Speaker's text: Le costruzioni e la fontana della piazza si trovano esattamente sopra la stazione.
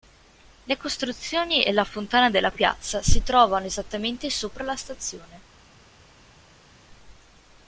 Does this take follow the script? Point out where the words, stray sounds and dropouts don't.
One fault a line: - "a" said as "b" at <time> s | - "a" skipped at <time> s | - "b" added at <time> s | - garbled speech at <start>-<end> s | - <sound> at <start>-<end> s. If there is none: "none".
none